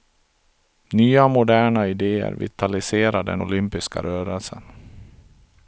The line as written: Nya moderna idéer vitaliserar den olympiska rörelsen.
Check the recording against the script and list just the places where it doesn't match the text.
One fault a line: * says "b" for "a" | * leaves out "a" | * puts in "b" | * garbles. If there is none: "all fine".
all fine